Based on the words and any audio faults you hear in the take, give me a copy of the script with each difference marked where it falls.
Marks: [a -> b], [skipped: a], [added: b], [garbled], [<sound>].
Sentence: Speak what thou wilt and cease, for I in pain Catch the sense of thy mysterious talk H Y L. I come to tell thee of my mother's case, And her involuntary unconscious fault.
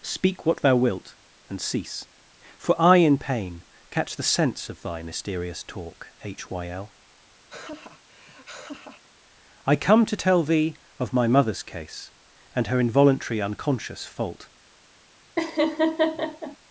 Speak what thou wilt and cease, for I in pain Catch the sense of thy mysterious talk H Y L. [laugh] I come to tell thee of my mother's case, And her involuntary unconscious fault. [laugh]